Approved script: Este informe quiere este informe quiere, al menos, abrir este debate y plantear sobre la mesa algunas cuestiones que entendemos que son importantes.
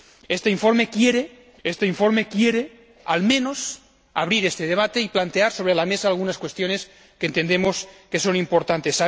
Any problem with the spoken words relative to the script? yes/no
no